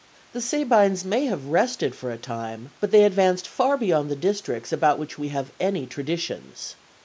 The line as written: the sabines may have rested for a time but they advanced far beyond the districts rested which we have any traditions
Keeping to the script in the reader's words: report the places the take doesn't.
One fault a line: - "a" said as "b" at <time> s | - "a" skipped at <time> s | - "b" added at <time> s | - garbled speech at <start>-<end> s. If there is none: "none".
- "rested" said as "about" at 4.7 s